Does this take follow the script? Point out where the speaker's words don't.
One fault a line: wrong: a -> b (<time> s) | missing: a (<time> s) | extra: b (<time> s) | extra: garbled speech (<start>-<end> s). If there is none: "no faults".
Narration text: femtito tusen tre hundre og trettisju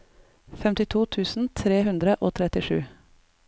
no faults